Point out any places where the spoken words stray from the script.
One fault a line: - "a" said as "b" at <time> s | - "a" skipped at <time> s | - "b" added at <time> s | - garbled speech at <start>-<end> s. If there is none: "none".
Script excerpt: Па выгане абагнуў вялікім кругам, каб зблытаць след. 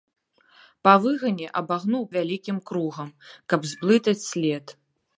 none